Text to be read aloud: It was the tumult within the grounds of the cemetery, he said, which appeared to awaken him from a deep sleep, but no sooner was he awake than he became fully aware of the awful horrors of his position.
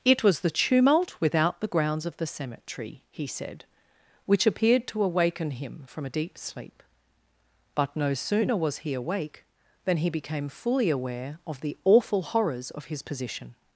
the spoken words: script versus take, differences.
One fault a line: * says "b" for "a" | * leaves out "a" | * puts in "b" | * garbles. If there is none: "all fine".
* says "without" for "within"